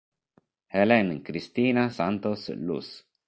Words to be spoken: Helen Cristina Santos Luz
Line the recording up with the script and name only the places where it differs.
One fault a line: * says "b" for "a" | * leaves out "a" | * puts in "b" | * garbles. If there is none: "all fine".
all fine